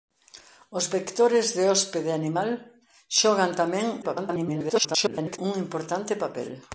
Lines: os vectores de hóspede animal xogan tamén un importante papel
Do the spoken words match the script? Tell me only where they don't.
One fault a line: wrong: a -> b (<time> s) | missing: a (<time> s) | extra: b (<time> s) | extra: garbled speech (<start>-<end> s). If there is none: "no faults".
extra: garbled speech (4.0-5.4 s)